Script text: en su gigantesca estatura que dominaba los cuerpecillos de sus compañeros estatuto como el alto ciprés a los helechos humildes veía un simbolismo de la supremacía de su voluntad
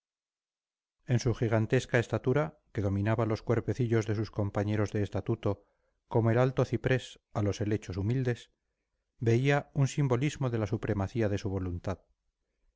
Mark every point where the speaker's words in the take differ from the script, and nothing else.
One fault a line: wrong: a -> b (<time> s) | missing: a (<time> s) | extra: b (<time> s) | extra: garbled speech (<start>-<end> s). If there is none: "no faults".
extra: de (4.9 s)